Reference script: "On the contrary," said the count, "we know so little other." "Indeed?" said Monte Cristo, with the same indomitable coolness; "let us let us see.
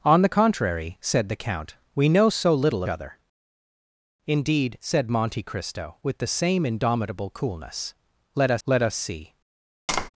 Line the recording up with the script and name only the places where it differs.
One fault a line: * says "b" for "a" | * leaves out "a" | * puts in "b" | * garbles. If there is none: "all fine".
all fine